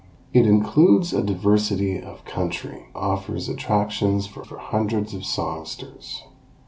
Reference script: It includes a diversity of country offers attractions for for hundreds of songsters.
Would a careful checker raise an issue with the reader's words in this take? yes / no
no